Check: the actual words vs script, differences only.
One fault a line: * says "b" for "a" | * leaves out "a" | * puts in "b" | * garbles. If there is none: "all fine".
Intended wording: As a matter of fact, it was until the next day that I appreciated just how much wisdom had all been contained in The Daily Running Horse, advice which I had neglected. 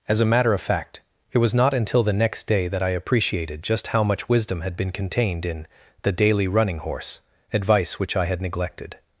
* puts in "not"
* leaves out "all"